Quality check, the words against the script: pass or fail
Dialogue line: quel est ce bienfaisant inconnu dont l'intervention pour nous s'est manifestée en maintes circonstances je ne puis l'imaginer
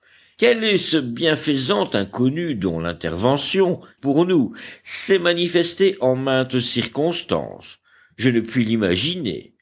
pass